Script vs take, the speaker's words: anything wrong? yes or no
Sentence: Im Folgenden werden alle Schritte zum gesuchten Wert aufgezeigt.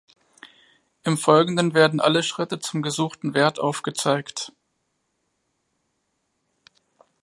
no